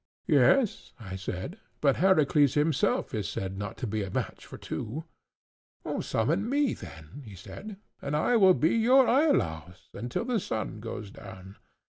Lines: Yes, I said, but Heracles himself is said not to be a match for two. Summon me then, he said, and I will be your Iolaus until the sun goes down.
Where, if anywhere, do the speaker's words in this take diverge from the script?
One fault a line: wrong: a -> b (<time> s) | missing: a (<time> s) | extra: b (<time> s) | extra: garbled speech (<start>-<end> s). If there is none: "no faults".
no faults